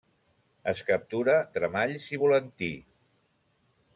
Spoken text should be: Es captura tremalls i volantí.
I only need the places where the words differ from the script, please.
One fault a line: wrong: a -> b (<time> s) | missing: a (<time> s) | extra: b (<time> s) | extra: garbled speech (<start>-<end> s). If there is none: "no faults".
no faults